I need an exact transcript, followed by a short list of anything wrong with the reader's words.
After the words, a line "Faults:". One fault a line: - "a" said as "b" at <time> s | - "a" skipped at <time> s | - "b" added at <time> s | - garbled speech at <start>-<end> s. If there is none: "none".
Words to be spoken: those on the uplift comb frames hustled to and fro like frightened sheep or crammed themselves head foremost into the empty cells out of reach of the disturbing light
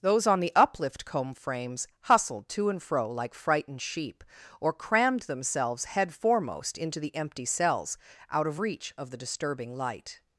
those on the uplift comb frames hustled to and fro like frightened sheep or crammed themselves head foremost into the empty cells out of reach of the disturbing light
Faults:
none